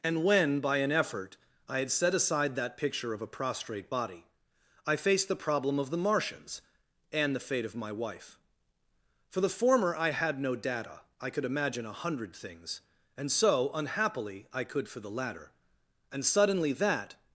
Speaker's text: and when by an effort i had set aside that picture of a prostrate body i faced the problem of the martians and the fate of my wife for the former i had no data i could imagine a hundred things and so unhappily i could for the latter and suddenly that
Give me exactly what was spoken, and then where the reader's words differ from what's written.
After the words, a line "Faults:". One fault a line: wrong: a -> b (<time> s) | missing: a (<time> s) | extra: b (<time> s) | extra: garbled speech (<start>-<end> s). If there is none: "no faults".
and when by an effort i had set aside that picture of a prostrate body i faced the problem of the martians and the fate of my wife for the former i had no data i could imagine a hundred things and so unhappily i could for the latter and suddenly that
Faults:
no faults